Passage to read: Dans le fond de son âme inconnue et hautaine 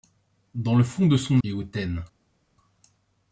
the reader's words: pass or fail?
fail